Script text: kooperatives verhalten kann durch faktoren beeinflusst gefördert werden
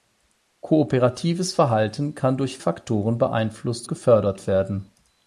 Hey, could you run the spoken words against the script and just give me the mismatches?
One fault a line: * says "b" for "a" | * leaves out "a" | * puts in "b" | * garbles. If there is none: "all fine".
all fine